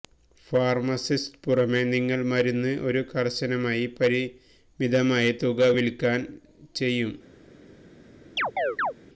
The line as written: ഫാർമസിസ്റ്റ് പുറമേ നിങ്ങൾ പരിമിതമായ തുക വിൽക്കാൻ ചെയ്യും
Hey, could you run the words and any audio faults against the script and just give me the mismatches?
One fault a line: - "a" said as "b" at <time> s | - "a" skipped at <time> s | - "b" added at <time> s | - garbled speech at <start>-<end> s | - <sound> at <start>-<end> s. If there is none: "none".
- "മരുന്ന് ഒരു കർശനമായി" added at 2.2 s
- chirp at 8.4-8.9 s